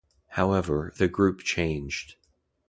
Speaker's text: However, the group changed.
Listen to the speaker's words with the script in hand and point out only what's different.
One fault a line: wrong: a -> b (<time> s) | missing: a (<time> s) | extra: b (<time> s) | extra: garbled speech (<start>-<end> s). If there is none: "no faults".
no faults